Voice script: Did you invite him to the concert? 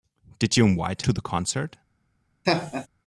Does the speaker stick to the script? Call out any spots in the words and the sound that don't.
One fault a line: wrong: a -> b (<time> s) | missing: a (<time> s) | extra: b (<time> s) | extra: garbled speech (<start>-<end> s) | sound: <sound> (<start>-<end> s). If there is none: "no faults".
missing: him (1.0 s)
sound: laugh (2.4-2.9 s)